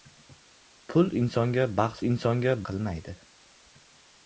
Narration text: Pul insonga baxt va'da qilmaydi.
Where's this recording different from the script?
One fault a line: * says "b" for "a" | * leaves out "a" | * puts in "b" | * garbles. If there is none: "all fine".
* says "insonga" for "va'da"